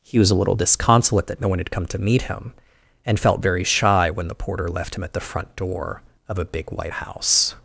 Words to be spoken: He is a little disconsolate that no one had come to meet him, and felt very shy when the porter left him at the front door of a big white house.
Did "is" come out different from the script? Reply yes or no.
yes